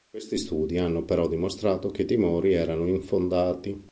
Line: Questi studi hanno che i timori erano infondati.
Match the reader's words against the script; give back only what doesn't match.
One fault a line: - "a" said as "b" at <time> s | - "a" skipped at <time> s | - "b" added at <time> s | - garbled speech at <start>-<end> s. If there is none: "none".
- "però dimostrato" added at 1.1 s